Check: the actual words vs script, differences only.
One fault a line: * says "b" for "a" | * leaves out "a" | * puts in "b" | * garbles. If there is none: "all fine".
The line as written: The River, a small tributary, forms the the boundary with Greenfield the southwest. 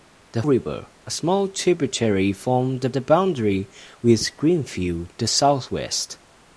all fine